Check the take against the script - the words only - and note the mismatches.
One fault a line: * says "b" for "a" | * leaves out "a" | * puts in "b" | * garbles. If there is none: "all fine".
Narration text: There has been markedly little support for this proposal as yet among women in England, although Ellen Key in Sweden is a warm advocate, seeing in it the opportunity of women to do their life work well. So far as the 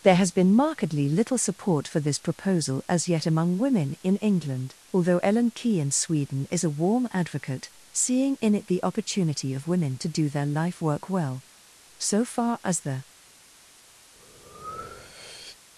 all fine